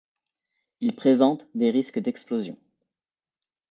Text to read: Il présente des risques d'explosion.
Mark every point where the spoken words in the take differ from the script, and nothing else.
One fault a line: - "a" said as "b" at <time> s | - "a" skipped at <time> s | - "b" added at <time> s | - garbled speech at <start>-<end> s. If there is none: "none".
none